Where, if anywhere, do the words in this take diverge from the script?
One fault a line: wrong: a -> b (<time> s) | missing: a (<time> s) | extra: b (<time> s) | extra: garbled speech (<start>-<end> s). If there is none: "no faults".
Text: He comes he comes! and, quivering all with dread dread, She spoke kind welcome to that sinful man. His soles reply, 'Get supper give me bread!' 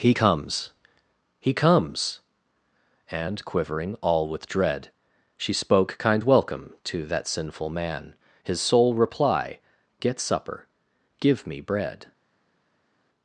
missing: dread (4.9 s)
wrong: soles -> sole (8.6 s)